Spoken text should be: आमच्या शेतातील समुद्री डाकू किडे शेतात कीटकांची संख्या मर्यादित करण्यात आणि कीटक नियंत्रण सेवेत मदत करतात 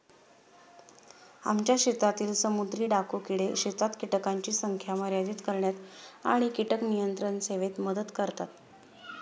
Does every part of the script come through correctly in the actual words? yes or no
yes